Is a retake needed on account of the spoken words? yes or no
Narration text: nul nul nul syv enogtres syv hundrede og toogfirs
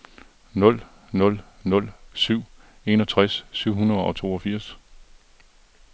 no